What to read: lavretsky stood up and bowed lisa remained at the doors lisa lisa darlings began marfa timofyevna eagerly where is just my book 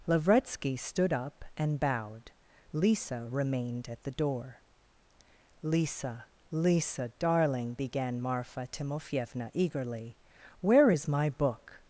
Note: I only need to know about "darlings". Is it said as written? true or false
false